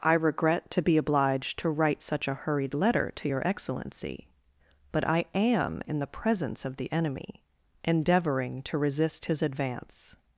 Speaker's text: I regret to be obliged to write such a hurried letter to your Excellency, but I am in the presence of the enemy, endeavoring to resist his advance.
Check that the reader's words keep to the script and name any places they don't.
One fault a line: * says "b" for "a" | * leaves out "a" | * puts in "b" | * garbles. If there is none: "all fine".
all fine